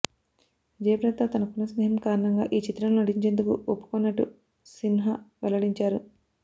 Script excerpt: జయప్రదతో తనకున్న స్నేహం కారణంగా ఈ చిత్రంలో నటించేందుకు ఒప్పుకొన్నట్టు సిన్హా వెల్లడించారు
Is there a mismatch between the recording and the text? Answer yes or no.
no